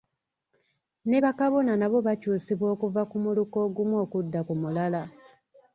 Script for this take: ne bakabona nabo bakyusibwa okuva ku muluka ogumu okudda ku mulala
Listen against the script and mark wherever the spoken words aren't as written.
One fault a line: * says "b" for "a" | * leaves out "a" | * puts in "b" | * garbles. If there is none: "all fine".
all fine